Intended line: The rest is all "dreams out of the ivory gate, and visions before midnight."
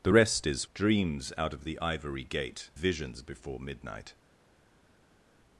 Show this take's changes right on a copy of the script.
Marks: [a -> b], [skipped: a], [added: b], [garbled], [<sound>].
The rest is [skipped: all] "dreams out of the ivory gate, [skipped: and] visions before midnight."